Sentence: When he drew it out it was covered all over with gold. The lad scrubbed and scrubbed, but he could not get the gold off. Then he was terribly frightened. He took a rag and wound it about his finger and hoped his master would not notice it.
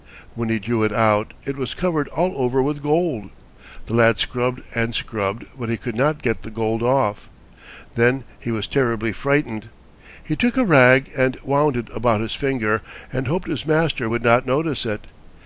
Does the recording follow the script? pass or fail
pass